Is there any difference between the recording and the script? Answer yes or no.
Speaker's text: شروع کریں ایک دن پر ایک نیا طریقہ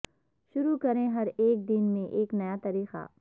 yes